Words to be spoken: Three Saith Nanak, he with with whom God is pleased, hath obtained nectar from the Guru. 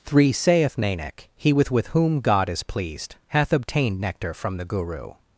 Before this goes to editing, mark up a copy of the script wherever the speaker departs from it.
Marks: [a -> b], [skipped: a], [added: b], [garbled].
Three Saith Nanak, he with with whom God is pleased, hath obtained nectar from the Guru.